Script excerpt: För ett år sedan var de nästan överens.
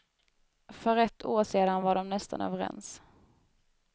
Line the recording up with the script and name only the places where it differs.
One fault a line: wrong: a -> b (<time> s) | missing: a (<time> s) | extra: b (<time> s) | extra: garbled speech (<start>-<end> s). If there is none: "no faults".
no faults